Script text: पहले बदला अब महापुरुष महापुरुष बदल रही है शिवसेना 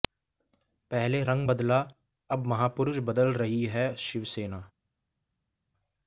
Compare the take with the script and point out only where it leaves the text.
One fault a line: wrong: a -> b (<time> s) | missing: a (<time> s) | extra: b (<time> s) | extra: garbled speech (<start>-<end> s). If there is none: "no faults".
extra: रंग (1.2 s)
missing: महापुरुष (3.0 s)